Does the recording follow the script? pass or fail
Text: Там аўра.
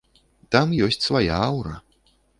fail